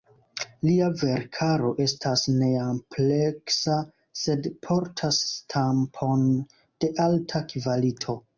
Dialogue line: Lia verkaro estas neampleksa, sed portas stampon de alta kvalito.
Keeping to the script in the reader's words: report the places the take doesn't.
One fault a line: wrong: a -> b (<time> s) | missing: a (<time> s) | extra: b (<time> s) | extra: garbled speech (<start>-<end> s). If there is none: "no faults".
no faults